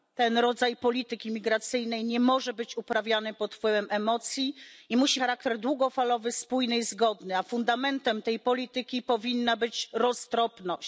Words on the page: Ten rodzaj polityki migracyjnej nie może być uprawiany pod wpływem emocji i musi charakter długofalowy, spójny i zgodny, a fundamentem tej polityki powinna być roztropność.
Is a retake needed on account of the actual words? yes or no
no